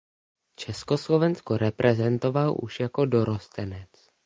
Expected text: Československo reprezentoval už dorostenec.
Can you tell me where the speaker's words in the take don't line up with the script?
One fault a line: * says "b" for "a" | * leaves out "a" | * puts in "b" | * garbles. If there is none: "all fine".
* puts in "jako"